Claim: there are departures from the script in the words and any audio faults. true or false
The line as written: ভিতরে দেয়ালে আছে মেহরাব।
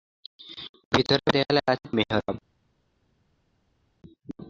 false